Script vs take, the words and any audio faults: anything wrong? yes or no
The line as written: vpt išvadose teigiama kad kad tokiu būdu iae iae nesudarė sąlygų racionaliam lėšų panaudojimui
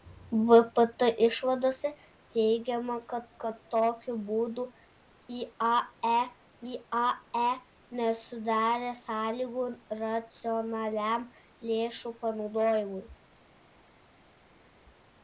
no